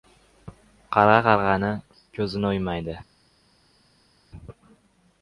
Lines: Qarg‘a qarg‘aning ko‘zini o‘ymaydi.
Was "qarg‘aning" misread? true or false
false